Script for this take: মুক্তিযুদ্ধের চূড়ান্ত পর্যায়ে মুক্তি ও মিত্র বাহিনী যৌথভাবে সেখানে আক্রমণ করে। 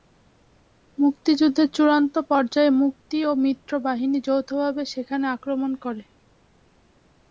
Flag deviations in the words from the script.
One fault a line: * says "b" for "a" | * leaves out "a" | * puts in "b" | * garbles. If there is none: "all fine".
all fine